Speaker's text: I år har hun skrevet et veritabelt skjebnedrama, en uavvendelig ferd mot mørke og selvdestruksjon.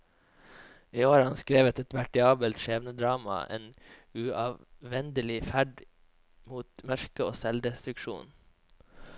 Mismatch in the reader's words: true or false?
true